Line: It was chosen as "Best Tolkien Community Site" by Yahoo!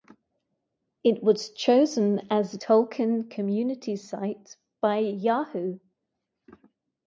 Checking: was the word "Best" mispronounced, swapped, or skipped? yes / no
yes